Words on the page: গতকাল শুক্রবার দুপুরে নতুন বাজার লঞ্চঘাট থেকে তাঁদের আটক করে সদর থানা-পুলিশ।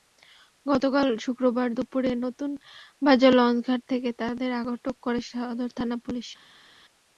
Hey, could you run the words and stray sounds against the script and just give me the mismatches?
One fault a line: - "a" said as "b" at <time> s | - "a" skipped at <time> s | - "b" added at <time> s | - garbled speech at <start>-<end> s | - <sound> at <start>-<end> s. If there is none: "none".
none